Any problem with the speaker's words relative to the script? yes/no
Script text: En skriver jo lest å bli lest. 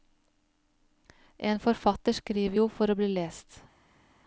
yes